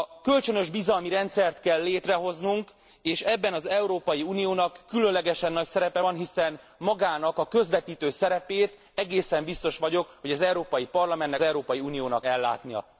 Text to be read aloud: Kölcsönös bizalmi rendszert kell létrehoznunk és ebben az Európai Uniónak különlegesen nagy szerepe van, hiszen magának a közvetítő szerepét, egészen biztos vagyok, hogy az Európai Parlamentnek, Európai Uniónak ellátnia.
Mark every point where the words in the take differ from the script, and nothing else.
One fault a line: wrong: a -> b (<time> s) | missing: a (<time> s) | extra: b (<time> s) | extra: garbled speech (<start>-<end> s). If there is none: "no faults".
no faults